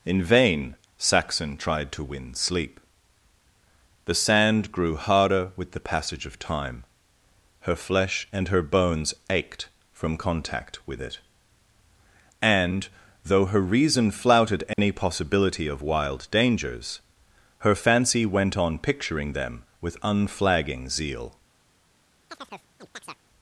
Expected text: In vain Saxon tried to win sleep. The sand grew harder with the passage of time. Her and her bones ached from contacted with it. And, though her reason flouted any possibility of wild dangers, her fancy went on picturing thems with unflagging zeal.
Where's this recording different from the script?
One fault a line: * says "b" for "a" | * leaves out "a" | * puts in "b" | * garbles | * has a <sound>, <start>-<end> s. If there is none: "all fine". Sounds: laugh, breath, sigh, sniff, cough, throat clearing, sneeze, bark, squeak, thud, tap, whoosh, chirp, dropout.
* puts in "flesh"
* says "contact" for "contacted"
* has a dropout, 14.7-14.8 s
* says "them" for "thems"
* has a chirp, 22.3-23.2 s